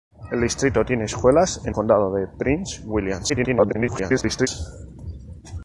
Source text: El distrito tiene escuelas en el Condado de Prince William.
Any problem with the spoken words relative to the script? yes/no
yes